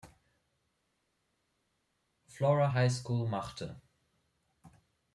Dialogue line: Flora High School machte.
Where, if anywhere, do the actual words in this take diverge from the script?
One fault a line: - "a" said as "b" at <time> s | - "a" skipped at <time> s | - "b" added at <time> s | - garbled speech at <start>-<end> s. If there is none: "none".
none